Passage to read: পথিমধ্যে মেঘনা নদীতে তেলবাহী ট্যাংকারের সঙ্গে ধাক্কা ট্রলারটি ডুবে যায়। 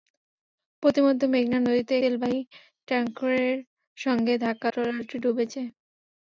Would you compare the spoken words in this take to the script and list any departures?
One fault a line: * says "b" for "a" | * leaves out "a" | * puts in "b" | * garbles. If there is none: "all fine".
all fine